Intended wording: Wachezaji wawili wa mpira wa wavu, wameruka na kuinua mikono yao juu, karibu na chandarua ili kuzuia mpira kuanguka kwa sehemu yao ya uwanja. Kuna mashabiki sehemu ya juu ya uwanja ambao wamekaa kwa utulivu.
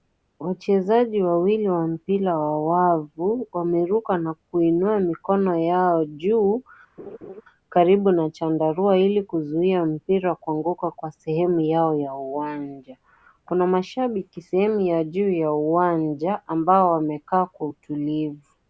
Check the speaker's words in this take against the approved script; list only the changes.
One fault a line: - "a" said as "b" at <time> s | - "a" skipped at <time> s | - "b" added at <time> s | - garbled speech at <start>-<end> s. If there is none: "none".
none